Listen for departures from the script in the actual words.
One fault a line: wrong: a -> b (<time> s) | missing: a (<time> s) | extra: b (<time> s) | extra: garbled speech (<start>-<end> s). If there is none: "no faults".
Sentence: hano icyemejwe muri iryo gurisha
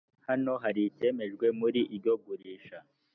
extra: hari (0.6 s)